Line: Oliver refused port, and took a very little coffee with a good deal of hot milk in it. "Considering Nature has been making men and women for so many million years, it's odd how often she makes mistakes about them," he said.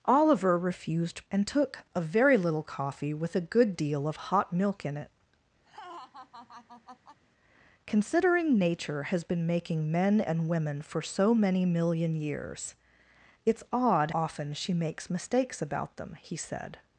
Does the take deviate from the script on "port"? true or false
true